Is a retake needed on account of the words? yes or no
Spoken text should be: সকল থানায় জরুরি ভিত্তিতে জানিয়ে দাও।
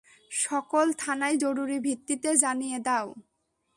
no